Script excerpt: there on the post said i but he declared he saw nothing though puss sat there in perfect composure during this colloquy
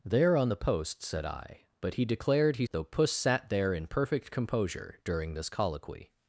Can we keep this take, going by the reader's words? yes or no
no